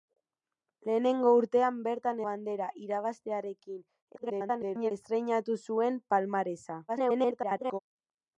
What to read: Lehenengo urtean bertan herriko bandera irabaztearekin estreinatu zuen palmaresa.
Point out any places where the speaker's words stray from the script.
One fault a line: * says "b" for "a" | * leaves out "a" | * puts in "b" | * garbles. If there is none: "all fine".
* leaves out "herriko"
* garbles
* garbles